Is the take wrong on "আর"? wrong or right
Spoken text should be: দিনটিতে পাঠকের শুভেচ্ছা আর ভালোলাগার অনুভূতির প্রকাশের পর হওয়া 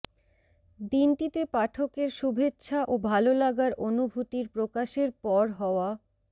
wrong